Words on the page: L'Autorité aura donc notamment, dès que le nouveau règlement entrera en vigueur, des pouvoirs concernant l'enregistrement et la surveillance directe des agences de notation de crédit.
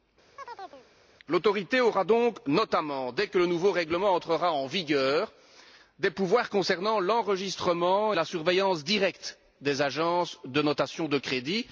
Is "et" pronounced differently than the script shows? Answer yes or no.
yes